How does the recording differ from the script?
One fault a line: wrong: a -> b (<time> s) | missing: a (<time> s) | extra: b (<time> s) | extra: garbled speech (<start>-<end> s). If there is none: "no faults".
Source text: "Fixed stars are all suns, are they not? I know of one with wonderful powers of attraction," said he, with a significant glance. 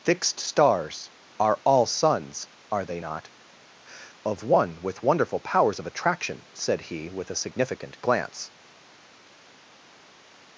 missing: I know (3.3 s)